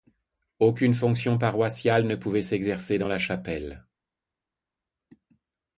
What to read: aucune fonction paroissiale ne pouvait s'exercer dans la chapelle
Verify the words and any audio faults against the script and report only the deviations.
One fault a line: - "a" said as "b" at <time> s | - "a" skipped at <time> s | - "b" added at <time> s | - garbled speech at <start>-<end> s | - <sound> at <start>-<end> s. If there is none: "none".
none